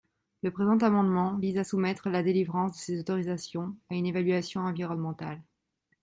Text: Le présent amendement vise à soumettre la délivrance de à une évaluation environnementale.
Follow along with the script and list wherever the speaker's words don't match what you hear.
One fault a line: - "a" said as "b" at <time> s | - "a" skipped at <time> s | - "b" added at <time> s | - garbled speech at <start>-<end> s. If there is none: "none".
- "ces autorisations" added at 2.8 s